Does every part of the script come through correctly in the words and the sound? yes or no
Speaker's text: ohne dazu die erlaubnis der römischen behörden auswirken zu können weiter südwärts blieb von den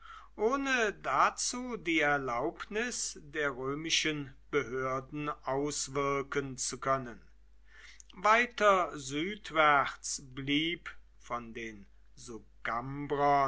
yes